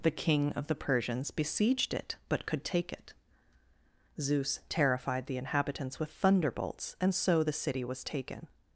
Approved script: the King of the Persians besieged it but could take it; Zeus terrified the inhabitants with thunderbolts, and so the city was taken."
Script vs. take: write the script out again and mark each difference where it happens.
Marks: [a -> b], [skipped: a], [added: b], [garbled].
the King of the Persians besieged it but could take it; Zeus terrified the inhabitants with thunderbolts, and so the city was taken."